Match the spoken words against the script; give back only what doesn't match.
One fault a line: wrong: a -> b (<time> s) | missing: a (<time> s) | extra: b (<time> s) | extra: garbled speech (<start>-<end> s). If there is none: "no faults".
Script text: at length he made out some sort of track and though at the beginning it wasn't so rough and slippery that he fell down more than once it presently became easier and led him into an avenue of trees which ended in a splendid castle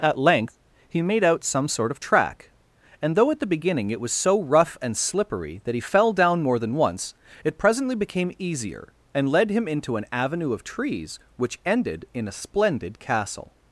wrong: wasn't -> was (4.0 s)